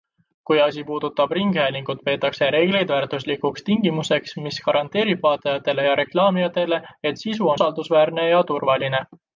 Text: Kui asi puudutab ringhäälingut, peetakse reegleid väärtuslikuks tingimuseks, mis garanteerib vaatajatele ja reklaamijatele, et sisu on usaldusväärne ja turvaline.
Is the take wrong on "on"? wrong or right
wrong